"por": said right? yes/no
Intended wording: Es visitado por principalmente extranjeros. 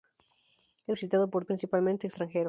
yes